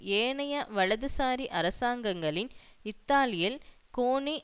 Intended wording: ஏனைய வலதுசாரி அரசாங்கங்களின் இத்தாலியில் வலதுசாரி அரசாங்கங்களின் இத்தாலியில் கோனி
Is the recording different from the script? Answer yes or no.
yes